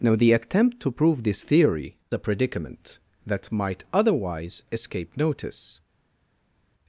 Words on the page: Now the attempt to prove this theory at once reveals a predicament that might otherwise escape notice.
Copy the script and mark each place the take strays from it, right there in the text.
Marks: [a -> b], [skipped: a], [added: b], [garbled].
Now the attempt to prove this theory [skipped: at once reveals] a predicament that might otherwise escape notice.